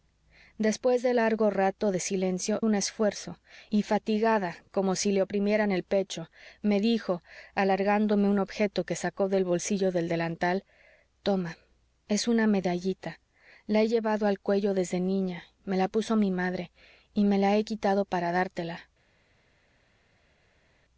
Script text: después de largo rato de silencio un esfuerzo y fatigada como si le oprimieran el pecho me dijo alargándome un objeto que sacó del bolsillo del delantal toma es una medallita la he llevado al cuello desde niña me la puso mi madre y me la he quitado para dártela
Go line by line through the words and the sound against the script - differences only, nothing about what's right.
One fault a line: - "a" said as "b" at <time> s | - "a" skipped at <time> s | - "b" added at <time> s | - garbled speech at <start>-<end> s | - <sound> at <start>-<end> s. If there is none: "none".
none